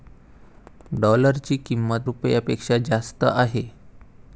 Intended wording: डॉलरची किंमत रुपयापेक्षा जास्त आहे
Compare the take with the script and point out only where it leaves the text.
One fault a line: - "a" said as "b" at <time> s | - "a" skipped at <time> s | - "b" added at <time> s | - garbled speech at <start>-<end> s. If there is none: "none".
none